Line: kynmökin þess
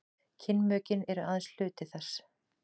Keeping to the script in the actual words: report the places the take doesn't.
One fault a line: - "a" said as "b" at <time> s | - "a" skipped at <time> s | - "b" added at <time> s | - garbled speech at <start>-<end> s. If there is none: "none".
- "eru aðeins hluti" added at 1.2 s